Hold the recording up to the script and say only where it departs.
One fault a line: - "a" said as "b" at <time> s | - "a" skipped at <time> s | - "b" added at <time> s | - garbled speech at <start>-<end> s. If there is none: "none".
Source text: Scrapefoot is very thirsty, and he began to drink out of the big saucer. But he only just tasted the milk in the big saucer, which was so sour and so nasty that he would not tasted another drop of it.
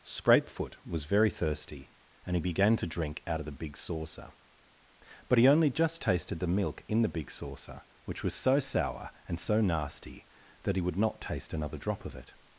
- "is" said as "was" at 0.8 s
- "tasted" said as "taste" at 11.2 s